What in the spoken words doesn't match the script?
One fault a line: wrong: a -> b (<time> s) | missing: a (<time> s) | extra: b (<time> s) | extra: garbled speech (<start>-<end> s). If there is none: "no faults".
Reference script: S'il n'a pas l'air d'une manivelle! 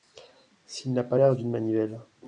no faults